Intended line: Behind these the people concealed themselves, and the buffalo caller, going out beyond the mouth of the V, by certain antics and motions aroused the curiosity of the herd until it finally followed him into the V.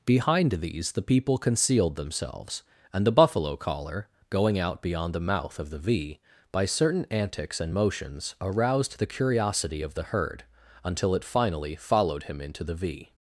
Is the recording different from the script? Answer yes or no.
no